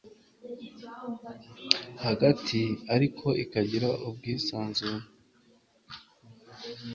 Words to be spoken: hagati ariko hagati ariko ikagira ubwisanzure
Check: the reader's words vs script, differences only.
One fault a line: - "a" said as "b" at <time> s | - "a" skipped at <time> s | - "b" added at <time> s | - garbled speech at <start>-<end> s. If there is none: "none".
- "hagati ariko" skipped at 3.3 s